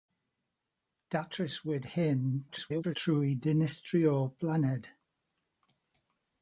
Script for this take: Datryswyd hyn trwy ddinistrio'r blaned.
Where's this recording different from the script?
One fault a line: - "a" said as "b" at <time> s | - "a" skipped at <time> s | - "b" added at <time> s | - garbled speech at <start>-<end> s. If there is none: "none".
- garbled speech at 2.5-3.0 s